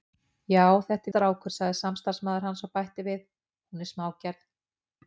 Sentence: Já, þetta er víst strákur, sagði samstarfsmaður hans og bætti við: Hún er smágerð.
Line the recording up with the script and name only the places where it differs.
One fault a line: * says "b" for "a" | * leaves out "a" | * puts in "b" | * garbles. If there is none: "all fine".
* leaves out "víst"